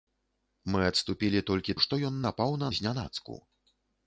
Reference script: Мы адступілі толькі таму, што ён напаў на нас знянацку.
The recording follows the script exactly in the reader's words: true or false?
false